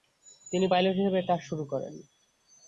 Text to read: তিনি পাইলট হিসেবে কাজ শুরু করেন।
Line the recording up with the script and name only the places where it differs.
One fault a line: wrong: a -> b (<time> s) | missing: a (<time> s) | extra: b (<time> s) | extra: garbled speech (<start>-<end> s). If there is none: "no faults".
no faults